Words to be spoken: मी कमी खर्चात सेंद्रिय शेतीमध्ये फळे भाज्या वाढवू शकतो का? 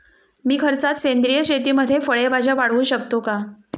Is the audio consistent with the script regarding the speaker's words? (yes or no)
no